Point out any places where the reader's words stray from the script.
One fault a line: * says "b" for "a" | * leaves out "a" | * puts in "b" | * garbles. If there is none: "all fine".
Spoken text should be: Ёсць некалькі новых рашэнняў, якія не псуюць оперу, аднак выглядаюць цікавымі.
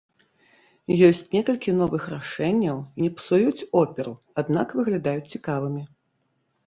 * leaves out "якія"